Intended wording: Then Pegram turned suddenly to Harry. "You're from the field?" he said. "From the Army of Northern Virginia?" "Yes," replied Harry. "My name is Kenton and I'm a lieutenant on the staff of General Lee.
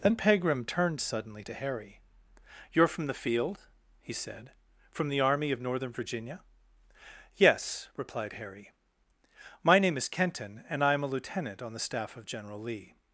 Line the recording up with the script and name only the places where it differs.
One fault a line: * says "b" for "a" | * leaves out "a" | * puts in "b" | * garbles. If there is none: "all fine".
all fine